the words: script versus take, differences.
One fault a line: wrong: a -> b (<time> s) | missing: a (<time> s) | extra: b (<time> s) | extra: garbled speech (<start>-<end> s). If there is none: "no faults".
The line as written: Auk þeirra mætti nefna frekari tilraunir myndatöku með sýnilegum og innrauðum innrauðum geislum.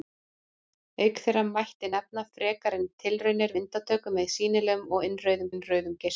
no faults